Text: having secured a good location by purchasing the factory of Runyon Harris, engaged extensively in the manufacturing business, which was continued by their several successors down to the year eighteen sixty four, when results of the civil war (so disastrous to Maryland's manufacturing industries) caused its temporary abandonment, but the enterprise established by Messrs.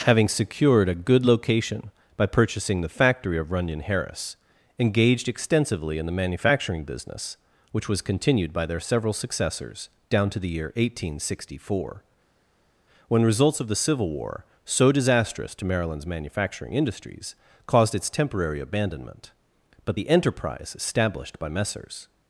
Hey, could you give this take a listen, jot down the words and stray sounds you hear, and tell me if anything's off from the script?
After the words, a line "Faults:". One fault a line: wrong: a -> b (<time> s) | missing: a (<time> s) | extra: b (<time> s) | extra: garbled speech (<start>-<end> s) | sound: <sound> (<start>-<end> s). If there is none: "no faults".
having secured a good location by purchasing the factory of Runyon Harris, engaged extensively in the manufacturing business, which was continued by their several successors down to the year eighteen sixty four, when results of the civil war (so disastrous to Maryland's manufacturing industries) caused its temporary abandonment, but the enterprise established by Messrs.
Faults:
no faults